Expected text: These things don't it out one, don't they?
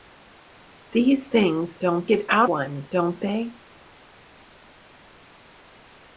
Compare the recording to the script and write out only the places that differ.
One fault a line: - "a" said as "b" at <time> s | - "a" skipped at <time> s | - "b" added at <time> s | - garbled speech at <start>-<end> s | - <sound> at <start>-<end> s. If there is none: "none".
none